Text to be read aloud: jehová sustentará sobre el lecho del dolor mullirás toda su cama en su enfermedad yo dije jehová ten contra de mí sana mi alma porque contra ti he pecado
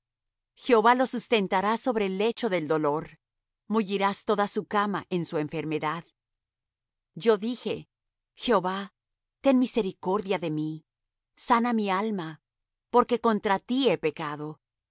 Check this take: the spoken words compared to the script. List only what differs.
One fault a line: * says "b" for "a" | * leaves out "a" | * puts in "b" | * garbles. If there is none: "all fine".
* puts in "lo"
* says "misericordia" for "contra"